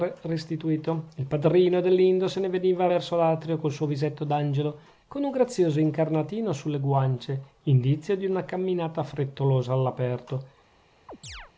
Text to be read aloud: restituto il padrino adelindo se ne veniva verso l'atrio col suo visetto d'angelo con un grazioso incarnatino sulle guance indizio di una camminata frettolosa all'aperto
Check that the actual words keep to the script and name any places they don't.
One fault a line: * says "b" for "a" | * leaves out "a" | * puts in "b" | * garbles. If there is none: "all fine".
all fine